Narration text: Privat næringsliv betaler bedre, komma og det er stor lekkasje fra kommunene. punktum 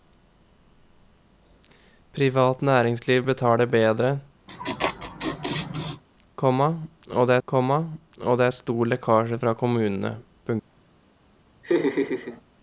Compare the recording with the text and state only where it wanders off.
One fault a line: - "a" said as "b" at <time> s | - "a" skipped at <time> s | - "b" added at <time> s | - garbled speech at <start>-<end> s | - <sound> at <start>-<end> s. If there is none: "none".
- laugh at 4.5-6.0 s
- "komma og det" added at 7.5 s
- laugh at 11.6-12.4 s